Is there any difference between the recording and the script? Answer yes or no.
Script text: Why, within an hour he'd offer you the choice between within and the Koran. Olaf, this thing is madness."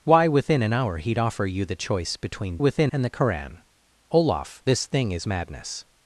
no